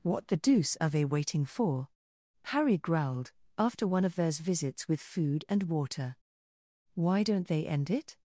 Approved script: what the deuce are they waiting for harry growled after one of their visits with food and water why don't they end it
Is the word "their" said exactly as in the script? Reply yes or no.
no